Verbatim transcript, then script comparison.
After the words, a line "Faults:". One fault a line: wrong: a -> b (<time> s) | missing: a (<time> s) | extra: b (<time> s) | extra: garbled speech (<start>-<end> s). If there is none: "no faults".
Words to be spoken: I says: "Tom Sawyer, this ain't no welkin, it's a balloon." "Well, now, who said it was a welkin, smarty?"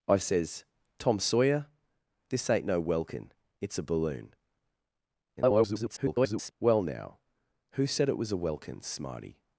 I says: "Tom Sawyer, this ain't no welkin, it's a balloon." [garbled] "Well, now, who said it was a welkin, smarty?"
Faults:
extra: garbled speech (5.4-6.5 s)